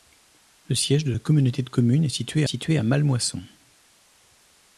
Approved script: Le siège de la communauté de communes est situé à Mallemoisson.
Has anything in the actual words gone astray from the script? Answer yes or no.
yes